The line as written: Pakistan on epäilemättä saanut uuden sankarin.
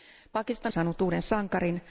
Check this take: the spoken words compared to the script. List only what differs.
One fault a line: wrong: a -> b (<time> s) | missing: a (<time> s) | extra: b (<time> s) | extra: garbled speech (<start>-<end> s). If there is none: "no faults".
missing: on epäilemättä (0.7 s)